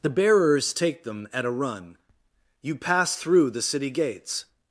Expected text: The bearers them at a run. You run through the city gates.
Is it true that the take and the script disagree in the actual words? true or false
true